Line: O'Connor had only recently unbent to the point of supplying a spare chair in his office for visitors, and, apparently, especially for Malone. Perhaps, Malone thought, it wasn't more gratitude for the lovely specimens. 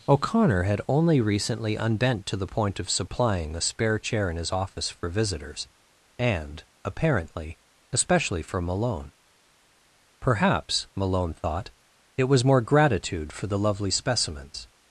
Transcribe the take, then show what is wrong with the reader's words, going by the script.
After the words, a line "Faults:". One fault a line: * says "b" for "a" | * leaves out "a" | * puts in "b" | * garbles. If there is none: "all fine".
O'Connor had only recently unbent to the point of supplying a spare chair in his office for visitors, and, apparently, especially for Malone. Perhaps, Malone thought, it was more gratitude for the lovely specimens.
Faults:
* says "was" for "wasn't"